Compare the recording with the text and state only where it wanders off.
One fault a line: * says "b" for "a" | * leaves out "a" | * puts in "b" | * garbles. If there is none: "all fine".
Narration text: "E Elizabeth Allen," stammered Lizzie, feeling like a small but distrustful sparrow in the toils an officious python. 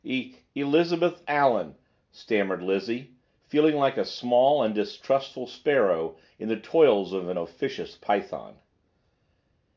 * says "and" for "but"
* puts in "of"